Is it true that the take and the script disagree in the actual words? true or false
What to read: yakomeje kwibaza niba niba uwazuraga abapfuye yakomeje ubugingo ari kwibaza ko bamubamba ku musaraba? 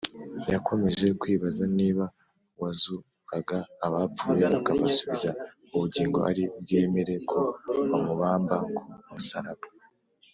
true